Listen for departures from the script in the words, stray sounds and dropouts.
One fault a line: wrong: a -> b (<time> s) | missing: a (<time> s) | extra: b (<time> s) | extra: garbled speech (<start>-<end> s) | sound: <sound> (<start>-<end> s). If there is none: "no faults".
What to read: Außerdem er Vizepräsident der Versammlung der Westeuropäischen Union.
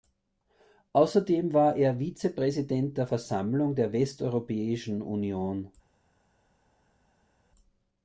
extra: war (1.5 s)